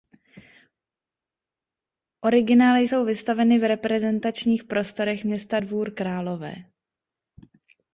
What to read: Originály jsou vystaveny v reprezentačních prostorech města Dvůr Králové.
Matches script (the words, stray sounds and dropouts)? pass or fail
pass